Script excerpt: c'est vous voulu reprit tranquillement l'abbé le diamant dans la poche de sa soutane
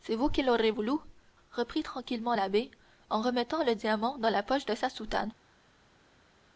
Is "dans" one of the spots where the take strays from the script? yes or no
no